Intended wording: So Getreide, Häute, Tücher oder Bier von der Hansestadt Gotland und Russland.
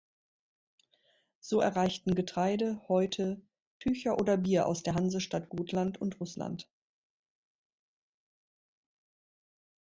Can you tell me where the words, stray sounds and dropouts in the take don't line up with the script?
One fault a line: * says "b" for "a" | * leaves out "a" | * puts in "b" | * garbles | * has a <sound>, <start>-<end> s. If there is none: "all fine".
* puts in "erreichten"
* says "aus" for "von"